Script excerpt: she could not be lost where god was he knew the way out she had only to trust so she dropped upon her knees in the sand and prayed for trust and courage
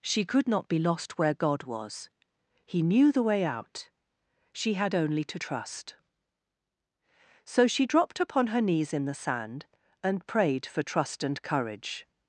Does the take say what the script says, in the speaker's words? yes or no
yes